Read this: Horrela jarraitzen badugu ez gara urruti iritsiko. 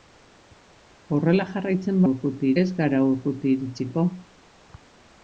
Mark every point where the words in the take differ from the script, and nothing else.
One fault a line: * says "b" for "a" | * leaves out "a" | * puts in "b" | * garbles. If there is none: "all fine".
* says "urruti" for "badugu"